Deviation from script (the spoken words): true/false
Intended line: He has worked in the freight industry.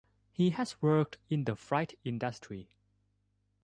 false